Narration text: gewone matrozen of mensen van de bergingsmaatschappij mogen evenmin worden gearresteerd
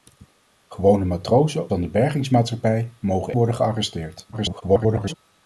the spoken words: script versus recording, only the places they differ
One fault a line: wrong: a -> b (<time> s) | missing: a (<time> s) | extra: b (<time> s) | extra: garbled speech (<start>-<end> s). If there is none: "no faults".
missing: of mensen (1.7 s)
missing: evenmin (3.3 s)
extra: garbled speech (4.3-5.1 s)